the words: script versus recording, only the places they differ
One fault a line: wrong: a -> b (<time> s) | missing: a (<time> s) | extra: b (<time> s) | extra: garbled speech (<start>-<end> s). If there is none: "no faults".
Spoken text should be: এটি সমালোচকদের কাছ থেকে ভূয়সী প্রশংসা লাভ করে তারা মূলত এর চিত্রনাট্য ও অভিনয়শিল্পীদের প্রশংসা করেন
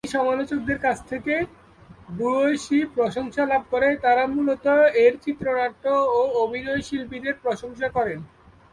no faults